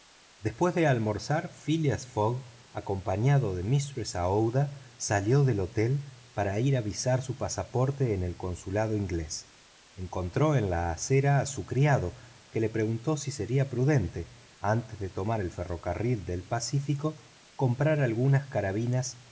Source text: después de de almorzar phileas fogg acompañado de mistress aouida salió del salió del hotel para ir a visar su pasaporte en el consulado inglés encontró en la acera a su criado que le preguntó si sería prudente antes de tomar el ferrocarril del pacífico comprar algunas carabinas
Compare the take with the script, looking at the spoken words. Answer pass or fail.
fail